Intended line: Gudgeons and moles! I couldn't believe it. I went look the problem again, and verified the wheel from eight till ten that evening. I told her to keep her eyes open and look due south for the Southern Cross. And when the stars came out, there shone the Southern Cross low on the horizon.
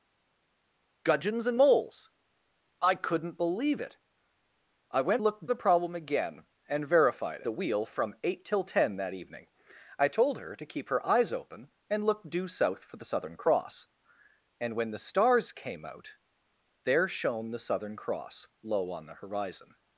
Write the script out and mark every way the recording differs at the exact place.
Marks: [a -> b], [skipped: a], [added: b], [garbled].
Gudgeons and moles! I couldn't believe it. I went look the problem again, and verified the wheel from eight till ten that evening. I told her to keep her eyes open and look due south for the Southern Cross. And when the stars came out, there shone the Southern Cross low on the horizon.